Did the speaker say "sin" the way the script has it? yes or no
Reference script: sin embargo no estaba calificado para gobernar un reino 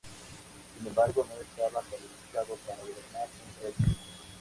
yes